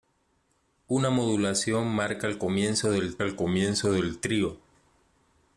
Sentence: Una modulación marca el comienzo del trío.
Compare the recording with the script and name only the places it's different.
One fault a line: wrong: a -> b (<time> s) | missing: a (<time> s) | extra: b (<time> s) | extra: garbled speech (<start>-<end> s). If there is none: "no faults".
extra: el comienzo del (3.2 s)